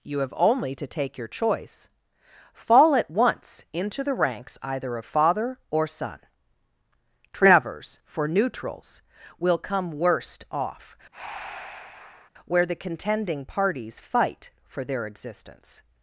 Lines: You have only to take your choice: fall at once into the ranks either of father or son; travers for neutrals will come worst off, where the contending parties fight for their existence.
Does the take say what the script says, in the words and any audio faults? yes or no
no